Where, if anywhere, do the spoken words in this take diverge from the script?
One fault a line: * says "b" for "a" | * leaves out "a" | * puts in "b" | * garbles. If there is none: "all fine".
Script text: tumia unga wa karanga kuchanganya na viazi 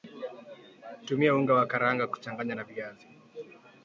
all fine